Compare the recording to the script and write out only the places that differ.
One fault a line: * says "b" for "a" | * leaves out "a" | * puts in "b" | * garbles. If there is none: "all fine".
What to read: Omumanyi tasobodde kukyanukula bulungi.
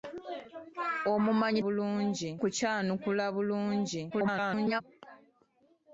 * says "bulungi" for "tasobodde"
* garbles